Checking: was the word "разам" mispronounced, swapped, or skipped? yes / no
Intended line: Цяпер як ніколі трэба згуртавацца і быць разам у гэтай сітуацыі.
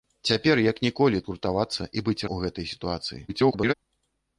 yes